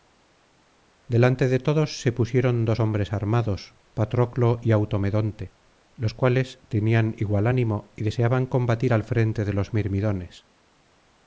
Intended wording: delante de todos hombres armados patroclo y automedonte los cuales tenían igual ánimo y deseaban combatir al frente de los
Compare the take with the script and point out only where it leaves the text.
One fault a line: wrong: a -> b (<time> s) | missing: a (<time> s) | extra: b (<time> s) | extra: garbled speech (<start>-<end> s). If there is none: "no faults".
extra: se pusieron dos (2.0 s)